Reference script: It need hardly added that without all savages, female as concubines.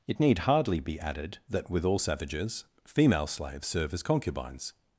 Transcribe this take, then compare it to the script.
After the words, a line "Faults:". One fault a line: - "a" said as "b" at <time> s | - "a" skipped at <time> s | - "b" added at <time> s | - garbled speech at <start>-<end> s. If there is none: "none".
It need hardly be added that with all savages, female slaves serve as concubines.
Faults:
- "be" added at 0.8 s
- "without" said as "with" at 1.7 s
- "slaves serve" added at 3.3 s